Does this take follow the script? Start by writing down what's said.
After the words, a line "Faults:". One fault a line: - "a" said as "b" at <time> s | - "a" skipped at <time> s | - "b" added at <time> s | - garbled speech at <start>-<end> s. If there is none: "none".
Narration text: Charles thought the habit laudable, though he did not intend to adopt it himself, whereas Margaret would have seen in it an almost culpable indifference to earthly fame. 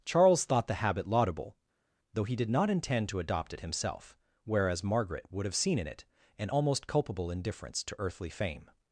Charles thought the habit laudable, though he did not intend to adopt it himself, whereas Margaret would have seen in it an almost culpable indifference to earthly fame.
Faults:
none